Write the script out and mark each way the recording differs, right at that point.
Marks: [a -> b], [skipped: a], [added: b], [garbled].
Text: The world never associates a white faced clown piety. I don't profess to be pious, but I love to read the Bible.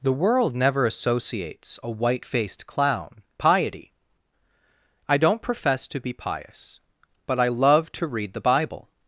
The world never associates a white faced clown piety. I don't profess to be pious, but I love to read the Bible.